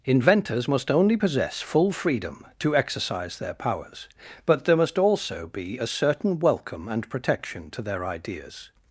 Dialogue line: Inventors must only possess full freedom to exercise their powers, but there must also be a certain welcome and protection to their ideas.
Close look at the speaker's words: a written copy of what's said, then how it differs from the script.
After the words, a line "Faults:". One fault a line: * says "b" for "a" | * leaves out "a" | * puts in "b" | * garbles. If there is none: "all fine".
Inventors must only possess full freedom to exercise their powers, but there must also be a certain welcome and protection to their ideas.
Faults:
all fine